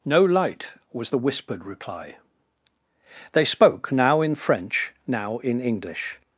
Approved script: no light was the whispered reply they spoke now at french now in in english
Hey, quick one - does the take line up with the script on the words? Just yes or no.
no